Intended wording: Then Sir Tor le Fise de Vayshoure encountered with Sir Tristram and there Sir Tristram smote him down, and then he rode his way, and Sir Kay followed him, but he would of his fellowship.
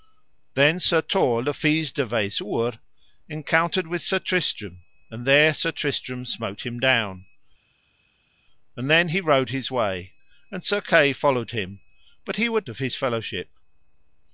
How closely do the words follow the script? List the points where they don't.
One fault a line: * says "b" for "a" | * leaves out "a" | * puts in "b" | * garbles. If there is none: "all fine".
all fine